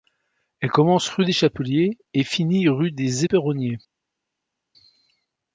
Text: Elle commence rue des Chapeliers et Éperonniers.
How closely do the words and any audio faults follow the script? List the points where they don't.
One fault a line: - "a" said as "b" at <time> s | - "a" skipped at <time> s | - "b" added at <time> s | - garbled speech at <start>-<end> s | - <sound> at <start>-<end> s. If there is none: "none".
- "finit rue des" added at 2.2 s